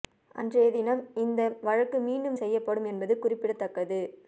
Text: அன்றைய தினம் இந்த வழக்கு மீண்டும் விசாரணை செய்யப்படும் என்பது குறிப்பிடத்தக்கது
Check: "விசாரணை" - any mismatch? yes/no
yes